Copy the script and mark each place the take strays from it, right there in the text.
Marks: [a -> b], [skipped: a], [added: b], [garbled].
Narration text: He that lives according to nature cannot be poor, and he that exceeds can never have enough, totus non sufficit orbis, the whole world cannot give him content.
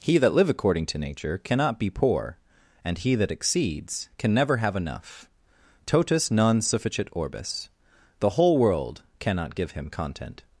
He that [lives -> live] according to nature cannot be poor, and he that exceeds can never have enough, totus non sufficit orbis, the whole world cannot give him content.